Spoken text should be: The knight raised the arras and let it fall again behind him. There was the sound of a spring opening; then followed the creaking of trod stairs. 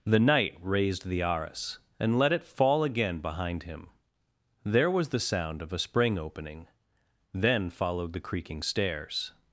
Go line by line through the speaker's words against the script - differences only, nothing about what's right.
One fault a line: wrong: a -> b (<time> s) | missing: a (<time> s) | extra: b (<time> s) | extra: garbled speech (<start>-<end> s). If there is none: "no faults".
missing: of trod (8.6 s)